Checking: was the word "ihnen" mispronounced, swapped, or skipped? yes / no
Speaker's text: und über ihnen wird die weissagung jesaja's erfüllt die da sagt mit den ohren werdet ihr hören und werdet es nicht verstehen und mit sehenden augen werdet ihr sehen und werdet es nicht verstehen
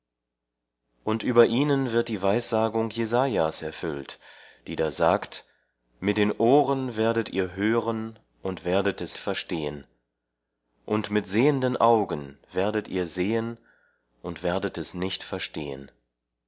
no